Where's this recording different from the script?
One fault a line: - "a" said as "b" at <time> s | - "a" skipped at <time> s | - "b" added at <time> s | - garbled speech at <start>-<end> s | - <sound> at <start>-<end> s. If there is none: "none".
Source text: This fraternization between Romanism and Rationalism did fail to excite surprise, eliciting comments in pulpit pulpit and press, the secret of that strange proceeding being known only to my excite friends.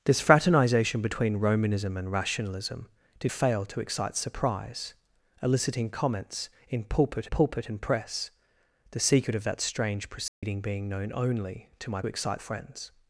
- dropout at 10.3-10.4 s